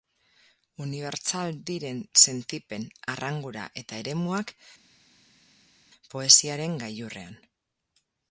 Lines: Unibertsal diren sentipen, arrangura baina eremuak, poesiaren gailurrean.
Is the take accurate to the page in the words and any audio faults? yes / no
no